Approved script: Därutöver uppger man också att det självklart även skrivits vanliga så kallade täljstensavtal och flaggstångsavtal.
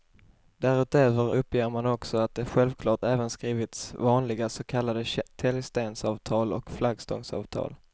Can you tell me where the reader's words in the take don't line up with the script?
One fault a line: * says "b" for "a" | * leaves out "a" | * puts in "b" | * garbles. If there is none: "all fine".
all fine